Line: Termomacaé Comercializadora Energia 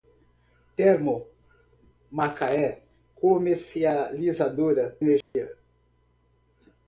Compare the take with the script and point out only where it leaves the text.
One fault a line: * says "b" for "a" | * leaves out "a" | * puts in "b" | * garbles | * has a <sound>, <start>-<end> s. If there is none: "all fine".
* has a dropout, 5.2-5.3 s